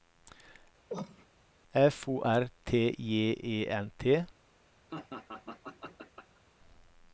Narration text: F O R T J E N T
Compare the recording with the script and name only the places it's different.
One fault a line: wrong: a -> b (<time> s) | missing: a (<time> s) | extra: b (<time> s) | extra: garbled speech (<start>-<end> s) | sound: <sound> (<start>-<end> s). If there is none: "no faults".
sound: cough (0.9-1.3 s)
sound: laugh (4.9-6.4 s)